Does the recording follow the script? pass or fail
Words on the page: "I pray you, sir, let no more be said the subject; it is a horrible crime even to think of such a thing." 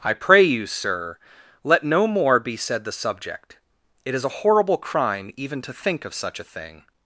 pass